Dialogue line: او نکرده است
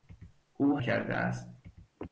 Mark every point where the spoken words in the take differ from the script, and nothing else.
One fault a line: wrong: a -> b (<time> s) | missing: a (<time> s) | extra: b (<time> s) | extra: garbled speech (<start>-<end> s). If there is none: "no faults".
no faults